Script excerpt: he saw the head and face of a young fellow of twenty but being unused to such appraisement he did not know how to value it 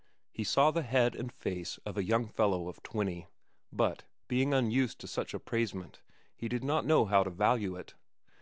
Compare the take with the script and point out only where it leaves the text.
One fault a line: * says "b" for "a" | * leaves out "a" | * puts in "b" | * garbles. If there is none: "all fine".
all fine